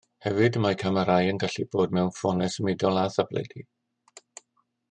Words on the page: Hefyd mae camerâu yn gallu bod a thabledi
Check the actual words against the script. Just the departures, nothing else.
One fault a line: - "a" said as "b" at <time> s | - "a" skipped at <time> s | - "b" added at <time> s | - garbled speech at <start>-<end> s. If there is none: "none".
- "mewn ffonau symudol" added at 2.0 s